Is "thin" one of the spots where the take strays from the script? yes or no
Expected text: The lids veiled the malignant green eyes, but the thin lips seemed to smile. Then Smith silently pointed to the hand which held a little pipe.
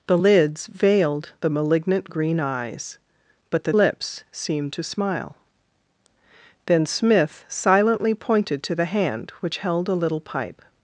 yes